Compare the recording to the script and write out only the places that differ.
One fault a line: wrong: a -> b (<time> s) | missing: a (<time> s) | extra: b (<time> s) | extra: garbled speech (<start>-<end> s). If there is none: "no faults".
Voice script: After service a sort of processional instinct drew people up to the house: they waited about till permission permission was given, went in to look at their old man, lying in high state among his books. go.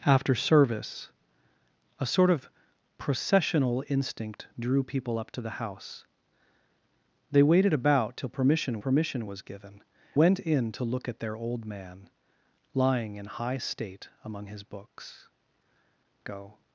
no faults